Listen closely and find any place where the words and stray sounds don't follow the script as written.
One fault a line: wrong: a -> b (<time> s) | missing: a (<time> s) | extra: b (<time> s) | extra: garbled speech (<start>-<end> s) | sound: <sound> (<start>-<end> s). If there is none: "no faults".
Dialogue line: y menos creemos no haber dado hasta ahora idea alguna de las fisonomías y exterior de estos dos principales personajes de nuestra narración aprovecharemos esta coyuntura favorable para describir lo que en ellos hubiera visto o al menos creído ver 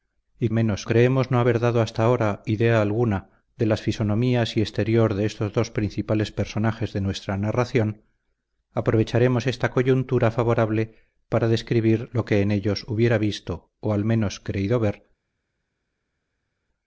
no faults